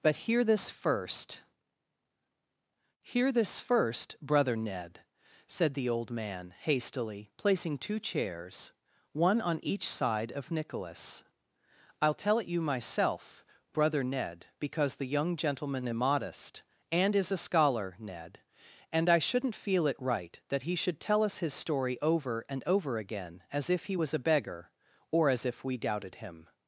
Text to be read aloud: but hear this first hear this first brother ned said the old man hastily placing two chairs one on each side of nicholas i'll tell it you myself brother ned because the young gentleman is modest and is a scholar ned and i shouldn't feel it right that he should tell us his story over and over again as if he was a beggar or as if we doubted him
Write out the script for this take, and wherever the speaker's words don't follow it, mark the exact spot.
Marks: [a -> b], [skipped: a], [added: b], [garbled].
but hear this first hear this first brother ned said the old man hastily placing two chairs one on each side of nicholas i'll tell it you myself brother ned because the young gentleman is modest and is a scholar ned and i shouldn't feel it right that he should tell us his story over and over again as if he was a beggar or as if we doubted him